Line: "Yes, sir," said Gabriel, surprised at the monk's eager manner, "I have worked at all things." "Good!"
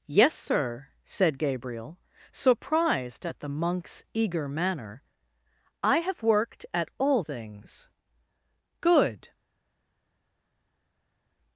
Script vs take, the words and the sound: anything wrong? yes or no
no